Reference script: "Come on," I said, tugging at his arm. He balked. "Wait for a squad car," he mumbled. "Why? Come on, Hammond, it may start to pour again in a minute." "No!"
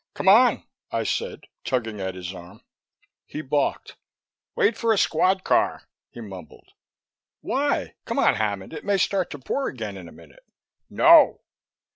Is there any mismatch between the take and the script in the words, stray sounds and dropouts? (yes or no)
no